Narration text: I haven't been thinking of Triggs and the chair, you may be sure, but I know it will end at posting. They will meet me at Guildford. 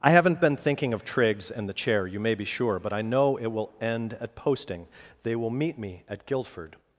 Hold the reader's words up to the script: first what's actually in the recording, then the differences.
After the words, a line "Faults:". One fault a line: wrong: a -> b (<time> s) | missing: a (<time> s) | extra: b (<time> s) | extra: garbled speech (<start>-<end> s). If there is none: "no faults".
I haven't been thinking of Triggs and the chair, you may be sure, but I know it will end at posting. They will meet me at Guildford.
Faults:
no faults